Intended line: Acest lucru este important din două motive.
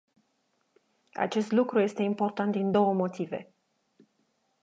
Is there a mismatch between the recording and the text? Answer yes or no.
no